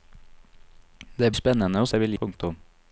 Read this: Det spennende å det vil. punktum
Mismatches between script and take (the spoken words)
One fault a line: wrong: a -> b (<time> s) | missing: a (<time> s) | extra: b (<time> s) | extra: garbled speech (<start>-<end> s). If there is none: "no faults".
no faults